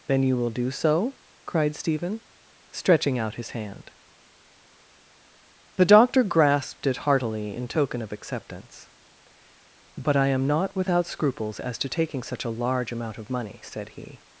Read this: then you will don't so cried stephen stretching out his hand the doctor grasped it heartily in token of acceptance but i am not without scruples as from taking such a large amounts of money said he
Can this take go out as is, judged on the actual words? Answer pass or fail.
fail